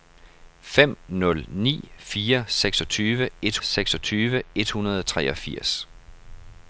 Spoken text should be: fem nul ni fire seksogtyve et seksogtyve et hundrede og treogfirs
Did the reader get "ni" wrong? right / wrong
right